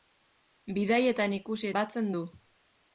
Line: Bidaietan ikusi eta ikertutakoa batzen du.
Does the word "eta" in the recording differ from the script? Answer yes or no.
yes